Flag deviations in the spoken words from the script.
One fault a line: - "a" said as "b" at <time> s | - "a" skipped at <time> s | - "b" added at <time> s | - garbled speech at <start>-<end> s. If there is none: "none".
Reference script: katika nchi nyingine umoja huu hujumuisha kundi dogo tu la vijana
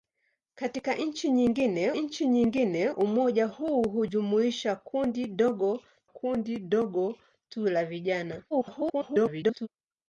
- "nchi nyingine" added at 1.9 s
- "kundi dogo" added at 6.0 s
- garbled speech at 8.5-9.7 s